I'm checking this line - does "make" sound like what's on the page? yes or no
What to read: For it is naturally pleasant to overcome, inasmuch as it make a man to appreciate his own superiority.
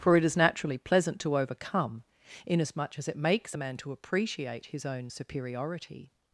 no